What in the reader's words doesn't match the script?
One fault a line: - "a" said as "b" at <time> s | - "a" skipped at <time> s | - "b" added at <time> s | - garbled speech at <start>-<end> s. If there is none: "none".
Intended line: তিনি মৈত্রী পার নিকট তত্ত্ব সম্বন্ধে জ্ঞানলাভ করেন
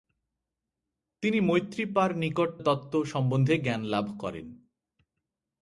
none